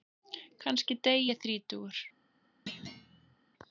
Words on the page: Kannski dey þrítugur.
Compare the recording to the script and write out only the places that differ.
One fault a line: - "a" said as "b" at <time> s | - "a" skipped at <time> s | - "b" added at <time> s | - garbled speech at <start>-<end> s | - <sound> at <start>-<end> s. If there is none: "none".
- "ég" added at 1.3 s
- thud at 2.7-3.4 s